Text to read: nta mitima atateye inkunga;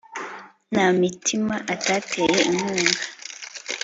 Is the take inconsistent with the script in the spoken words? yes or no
no